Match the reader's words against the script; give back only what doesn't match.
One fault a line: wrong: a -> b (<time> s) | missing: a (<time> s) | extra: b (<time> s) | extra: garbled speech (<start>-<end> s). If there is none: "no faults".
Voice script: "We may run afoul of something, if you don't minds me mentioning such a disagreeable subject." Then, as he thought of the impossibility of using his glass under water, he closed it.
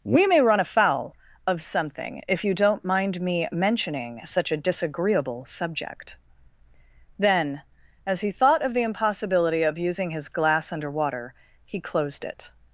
wrong: minds -> mind (2.8 s)